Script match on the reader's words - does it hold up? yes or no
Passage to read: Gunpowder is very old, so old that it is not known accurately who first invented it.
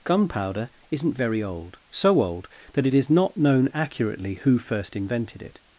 no